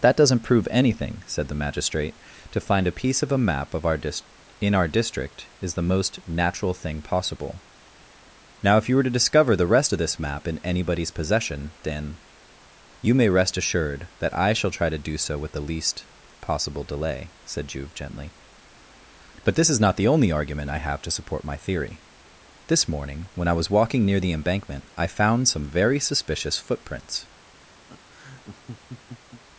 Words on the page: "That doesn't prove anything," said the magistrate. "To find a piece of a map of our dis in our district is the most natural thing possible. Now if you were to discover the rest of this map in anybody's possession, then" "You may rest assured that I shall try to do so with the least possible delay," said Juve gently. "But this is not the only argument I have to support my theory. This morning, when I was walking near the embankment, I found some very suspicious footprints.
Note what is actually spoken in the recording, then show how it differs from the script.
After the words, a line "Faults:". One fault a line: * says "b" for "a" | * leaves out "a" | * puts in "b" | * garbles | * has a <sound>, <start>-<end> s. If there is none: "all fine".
"That doesn't prove anything," said the magistrate. "To find a piece of a map of our dis in our district is the most natural thing possible. Now if you were to discover the rest of this map in anybody's possession, then" "You may rest assured that I shall try to do so with the least possible delay," said Juve gently. "But this is not the only argument I have to support my theory. This morning, when I was walking near the embankment, I found some very suspicious footprints.
Faults:
* has a laugh, 27.9-29.4 s